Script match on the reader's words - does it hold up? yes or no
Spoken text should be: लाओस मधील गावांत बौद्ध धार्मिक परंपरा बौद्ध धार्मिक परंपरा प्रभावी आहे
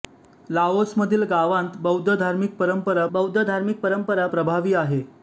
yes